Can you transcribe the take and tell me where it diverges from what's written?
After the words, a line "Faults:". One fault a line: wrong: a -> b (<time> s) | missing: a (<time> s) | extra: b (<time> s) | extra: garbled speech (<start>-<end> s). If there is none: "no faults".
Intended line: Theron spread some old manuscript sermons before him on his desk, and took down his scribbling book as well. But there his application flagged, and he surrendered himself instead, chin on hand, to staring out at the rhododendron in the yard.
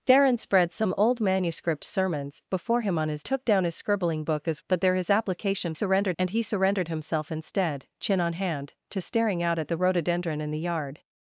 Theron spread some old manuscript sermons before him on his took down his scribbling book as. But there his application surrendered, and he surrendered himself instead, chin on hand, to staring out at the rhododendron in the yard.
Faults:
missing: desk and (3.2 s)
missing: well (4.6 s)
wrong: flagged -> surrendered (5.7 s)